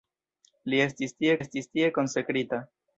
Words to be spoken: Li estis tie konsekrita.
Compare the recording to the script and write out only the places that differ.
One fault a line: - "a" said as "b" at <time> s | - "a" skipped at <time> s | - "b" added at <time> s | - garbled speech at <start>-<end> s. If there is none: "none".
- "estis tie" added at 1.4 s